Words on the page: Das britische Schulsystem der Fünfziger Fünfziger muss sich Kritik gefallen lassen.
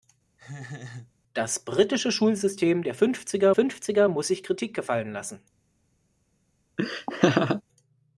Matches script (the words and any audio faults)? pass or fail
fail